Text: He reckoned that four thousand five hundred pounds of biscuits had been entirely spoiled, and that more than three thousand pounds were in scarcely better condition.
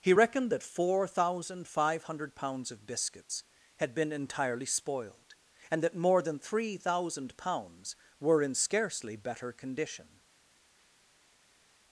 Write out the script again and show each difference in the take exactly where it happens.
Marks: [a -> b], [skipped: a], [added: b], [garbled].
He reckoned that four thousand five hundred pounds of biscuits had been entirely spoiled, and that more than three thousand pounds were in scarcely better condition.